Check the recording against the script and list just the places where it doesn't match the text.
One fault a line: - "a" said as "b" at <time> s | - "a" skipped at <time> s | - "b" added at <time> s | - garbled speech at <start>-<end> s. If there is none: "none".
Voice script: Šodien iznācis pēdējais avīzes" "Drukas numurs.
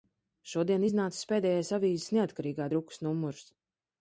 - "Neatkarīgā" added at 2.2 s